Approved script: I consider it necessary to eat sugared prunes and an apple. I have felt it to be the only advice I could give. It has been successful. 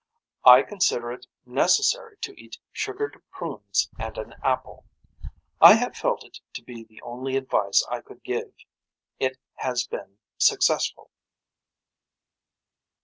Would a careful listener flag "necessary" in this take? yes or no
no